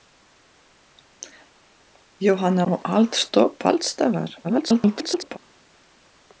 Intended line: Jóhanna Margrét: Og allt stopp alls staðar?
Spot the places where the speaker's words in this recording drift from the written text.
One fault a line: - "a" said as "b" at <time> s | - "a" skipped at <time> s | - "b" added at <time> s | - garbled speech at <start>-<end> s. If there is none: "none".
- "Margrét" skipped at 2.6 s
- garbled speech at 4.4-5.4 s